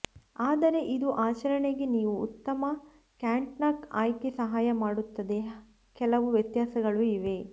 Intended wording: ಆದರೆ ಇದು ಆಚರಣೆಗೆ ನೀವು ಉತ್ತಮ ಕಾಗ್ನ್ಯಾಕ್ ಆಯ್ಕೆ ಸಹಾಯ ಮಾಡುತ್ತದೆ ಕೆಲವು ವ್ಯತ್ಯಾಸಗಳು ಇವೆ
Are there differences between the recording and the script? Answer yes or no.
no